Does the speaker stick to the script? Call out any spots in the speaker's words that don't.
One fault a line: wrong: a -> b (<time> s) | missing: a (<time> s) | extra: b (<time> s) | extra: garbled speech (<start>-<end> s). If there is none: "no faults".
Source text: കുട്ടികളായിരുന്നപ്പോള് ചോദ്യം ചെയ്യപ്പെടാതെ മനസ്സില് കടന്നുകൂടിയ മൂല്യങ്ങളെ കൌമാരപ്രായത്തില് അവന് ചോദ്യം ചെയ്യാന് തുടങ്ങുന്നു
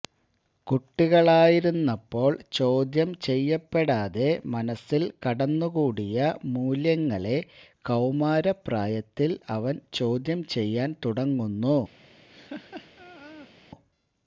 no faults